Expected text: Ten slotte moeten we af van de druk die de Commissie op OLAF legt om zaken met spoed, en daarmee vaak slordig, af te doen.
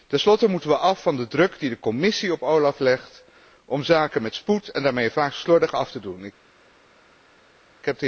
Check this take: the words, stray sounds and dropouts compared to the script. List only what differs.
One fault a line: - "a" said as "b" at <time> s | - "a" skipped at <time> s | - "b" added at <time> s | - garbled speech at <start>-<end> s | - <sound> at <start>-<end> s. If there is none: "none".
none